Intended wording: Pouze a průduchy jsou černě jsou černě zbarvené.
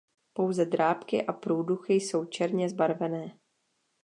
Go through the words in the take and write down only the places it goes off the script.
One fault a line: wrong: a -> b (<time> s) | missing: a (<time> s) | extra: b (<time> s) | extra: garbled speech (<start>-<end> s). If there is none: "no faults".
extra: drápky (0.7 s)
missing: jsou černě (2.7 s)